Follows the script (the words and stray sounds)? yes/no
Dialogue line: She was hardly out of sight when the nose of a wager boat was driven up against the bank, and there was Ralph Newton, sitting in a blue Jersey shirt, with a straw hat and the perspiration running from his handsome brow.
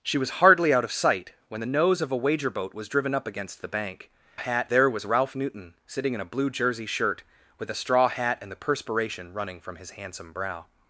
no